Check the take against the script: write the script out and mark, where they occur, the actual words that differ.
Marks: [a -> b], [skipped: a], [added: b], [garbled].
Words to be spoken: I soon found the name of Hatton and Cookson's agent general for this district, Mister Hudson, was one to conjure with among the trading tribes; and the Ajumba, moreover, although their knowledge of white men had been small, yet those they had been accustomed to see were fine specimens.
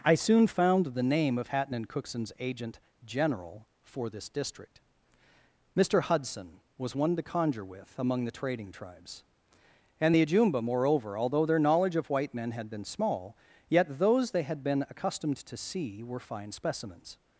I soon found the name of Hatton and Cookson's agent general for this district, Mister Hudson, was one to conjure with among the trading tribes; and the Ajumba, moreover, although their knowledge of white men had been small, yet those they had been accustomed to see were fine specimens.